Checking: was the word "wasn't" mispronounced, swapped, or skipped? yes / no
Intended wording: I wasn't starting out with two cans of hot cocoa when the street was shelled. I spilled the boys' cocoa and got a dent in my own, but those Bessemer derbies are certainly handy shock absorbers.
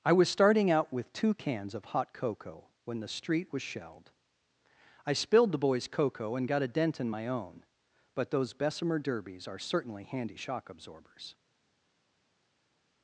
yes